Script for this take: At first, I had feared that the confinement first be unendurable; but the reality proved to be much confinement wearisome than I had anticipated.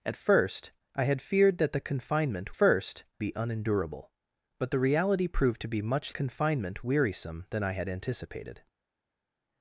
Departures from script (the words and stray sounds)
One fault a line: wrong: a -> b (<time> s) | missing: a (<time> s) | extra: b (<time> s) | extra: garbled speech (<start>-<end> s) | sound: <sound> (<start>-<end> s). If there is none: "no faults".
no faults